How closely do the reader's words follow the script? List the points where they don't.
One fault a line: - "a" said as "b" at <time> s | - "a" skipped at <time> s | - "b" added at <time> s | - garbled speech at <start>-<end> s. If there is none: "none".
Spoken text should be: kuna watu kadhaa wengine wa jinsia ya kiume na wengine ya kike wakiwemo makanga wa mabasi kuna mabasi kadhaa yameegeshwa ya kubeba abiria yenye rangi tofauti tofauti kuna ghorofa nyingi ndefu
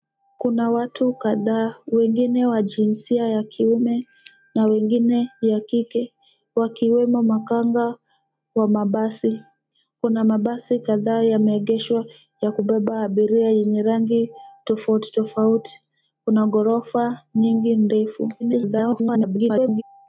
- garbled speech at 18.4-19.8 s